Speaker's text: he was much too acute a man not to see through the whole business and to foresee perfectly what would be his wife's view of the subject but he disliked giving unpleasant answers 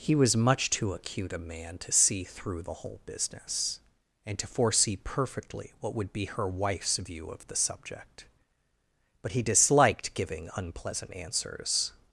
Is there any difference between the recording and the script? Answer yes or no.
yes